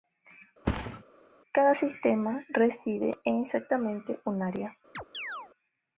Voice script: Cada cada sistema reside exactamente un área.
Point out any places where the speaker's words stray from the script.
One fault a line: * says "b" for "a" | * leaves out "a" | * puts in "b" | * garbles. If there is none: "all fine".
* leaves out "cada"
* puts in "en"